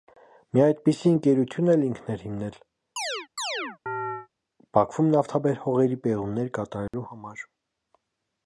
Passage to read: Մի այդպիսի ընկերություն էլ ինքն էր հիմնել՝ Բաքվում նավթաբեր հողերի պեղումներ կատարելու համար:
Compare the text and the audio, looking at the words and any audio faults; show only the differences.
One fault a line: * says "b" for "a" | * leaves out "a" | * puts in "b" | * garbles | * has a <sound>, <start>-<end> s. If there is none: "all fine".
* has a chirp, 3.0-4.3 s
* has a dropout, 6.9-6.9 s